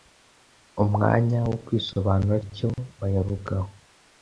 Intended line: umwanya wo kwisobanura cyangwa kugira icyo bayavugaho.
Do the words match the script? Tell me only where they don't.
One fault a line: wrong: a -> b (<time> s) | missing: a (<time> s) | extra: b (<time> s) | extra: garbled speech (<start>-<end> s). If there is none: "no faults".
missing: cyangwa kugira (2.4 s)